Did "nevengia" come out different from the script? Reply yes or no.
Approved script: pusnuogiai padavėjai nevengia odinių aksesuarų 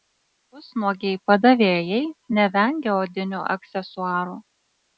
no